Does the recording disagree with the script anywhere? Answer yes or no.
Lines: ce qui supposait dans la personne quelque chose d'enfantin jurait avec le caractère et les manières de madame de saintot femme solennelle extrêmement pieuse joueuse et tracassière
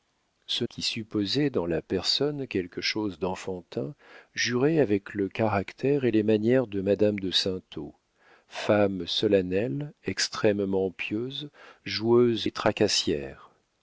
no